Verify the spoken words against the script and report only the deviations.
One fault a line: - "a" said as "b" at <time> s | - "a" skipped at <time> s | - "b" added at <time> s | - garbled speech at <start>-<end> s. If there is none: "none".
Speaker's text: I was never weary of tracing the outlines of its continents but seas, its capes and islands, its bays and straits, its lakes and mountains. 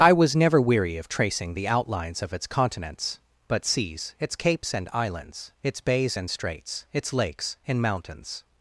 none